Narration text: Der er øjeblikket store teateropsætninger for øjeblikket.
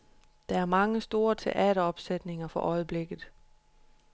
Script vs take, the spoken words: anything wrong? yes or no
yes